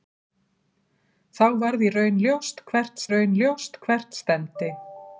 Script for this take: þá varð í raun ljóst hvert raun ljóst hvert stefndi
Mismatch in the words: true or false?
false